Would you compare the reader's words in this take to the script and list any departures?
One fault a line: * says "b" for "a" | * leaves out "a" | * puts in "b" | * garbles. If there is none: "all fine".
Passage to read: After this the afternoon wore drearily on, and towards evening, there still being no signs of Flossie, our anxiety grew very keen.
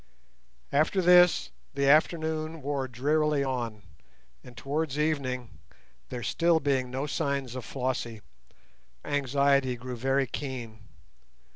* leaves out "our"